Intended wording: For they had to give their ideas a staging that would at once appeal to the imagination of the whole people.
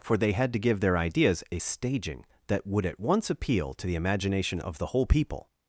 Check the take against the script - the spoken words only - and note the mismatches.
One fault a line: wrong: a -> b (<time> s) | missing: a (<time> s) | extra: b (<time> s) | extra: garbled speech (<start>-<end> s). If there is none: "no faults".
no faults